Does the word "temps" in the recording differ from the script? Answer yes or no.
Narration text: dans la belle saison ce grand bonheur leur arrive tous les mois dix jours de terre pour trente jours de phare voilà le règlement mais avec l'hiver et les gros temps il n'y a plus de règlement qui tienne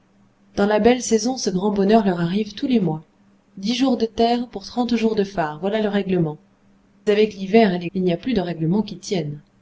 yes